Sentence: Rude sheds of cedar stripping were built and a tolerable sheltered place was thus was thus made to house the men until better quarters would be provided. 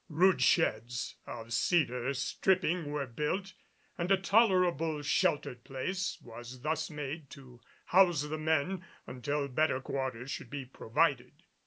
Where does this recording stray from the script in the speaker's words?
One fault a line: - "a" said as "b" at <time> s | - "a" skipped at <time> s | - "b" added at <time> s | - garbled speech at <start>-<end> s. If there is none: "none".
- "was thus" skipped at 6.9 s
- "would" said as "should" at 10.3 s